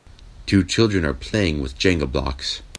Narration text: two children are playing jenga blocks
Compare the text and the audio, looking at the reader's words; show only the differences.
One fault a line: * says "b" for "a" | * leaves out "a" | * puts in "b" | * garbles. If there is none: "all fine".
* puts in "with"